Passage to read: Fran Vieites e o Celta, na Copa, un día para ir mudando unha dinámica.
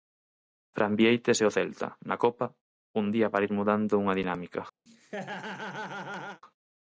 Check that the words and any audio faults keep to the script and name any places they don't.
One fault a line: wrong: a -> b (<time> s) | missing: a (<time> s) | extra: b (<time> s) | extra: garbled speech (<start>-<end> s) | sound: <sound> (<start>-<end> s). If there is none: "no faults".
sound: laugh (4.9-6.4 s)